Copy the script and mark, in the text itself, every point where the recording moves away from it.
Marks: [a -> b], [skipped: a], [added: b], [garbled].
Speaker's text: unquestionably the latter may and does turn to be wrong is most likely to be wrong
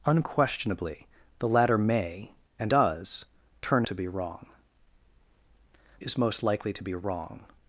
unquestionably the latter may and does turn to be wrong is most likely to be wrong